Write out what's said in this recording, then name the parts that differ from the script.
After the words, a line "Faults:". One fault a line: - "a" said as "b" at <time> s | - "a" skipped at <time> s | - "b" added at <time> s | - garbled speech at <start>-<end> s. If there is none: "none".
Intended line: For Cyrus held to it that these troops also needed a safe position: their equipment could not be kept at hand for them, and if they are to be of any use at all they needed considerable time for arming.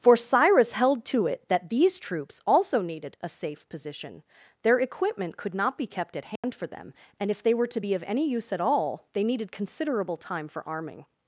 For Cyrus held to it that these troops also needed a safe position: their equipment could not be kept at hand for them, and if they were to be of any use at all they needed considerable time for arming.
Faults:
- "are" said as "were" at 7.5 s